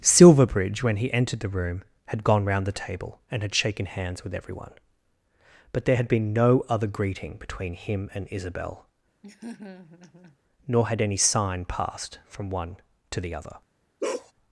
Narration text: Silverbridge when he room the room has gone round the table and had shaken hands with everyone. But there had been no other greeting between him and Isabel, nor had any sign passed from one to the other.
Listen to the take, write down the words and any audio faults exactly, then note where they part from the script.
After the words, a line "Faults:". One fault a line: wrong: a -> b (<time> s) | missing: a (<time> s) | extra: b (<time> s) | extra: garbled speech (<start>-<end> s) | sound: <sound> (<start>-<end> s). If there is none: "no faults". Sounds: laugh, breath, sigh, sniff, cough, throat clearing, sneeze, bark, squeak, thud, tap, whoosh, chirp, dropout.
Silverbridge when he entered the room had gone round the table and had shaken hands with everyone. But there had been no other greeting between him and Isabel, nor had any sign passed from one to the other.
Faults:
wrong: room -> entered (1.1 s)
wrong: has -> had (2.0 s)
sound: laugh (9.2-10.4 s)
sound: bark (14.0-14.3 s)